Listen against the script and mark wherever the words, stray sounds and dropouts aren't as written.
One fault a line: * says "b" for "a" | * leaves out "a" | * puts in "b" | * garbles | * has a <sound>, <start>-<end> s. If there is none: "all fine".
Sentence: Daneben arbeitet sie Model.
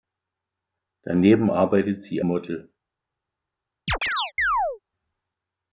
* has a chirp, 3.9-4.8 s